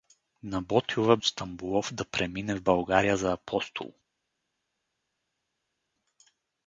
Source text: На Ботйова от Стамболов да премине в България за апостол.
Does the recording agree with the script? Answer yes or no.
yes